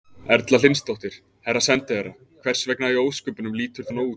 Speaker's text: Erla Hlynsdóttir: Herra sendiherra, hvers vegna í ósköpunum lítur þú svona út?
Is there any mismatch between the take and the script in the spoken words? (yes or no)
yes